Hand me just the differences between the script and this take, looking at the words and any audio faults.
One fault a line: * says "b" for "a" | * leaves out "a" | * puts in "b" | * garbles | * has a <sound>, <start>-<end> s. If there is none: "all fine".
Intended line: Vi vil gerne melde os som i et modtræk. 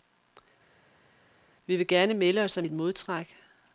all fine